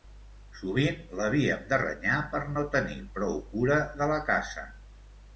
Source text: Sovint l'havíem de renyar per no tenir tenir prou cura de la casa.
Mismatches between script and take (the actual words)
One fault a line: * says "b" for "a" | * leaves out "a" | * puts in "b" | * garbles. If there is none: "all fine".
* leaves out "tenir"